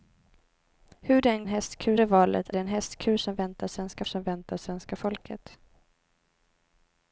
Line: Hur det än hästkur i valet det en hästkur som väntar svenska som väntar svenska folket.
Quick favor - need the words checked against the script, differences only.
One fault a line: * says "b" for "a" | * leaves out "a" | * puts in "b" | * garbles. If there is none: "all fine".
all fine